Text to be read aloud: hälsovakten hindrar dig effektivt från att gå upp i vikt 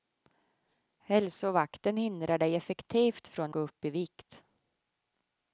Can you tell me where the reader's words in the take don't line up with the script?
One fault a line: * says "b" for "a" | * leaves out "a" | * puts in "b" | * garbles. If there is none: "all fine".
* leaves out "att"